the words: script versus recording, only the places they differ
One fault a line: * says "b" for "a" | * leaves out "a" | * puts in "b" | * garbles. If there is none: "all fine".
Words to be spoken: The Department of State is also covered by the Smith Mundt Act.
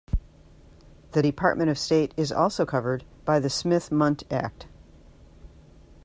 all fine